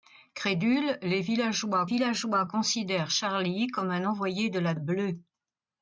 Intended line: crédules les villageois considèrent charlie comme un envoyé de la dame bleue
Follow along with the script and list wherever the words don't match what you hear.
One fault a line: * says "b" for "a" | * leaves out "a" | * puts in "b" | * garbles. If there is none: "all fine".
* puts in "villageois"
* leaves out "dame"